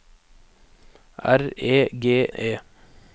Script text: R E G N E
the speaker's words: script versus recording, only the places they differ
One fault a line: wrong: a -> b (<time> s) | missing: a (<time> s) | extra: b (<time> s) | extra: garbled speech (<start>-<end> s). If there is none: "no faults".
missing: N (2.3 s)